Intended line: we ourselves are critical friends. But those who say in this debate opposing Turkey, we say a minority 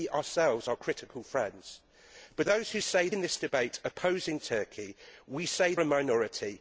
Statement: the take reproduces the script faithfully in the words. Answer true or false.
true